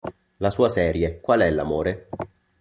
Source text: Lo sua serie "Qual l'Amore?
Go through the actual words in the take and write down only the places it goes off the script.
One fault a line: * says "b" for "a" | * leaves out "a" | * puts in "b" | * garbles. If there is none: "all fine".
* says "La" for "Lo"
* puts in "è"